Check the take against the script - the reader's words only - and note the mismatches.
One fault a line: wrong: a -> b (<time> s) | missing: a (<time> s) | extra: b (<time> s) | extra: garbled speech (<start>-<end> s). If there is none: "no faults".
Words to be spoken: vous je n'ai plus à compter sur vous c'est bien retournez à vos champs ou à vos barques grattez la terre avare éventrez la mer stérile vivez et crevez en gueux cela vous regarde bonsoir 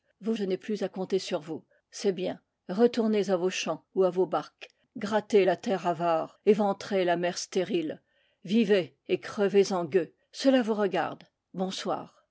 no faults